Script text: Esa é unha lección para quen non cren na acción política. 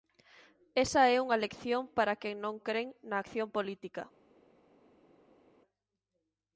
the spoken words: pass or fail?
pass